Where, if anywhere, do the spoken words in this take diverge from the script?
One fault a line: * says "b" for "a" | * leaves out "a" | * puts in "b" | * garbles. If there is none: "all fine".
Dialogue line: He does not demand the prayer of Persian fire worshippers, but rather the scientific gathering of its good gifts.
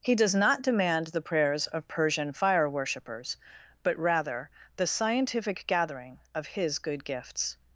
* says "prayers" for "prayer"
* says "his" for "its"